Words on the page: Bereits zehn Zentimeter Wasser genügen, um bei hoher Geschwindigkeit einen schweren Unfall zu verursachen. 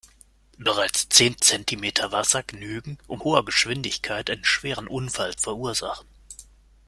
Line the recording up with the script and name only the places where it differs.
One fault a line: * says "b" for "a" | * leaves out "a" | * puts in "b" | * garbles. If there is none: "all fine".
* leaves out "bei"
* leaves out "zu"